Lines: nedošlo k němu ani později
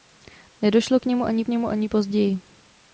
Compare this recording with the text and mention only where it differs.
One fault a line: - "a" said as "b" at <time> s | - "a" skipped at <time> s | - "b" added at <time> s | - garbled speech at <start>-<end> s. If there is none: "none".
- "němu ani" added at 1.5 s